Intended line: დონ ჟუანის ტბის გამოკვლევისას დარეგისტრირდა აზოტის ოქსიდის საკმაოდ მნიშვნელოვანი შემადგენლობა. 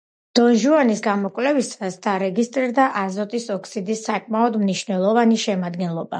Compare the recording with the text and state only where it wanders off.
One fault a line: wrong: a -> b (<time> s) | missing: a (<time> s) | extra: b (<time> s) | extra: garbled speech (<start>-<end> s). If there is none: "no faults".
missing: ტბის (1.0 s)